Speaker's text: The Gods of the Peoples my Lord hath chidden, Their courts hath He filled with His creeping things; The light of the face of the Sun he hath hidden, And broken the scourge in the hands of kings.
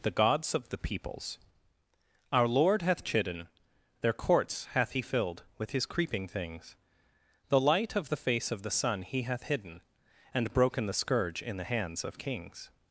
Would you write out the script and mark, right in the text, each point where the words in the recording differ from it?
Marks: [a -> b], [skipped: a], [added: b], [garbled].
The Gods of the Peoples [my -> our] Lord hath chidden, Their courts hath He filled with His creeping things; The light of the face of the Sun he hath hidden, And broken the scourge in the hands of kings.